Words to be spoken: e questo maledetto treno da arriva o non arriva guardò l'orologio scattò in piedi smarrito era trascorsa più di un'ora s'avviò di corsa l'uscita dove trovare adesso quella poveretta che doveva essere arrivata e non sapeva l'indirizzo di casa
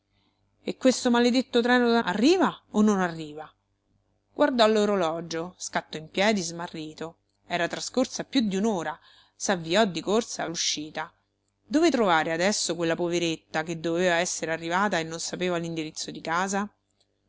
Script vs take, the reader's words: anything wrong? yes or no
no